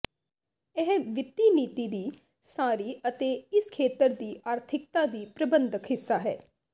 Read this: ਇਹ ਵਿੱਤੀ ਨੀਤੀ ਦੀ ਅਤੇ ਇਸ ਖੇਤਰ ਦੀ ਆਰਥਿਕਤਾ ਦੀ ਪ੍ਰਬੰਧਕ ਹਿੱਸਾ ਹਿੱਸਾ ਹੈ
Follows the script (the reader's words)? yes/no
no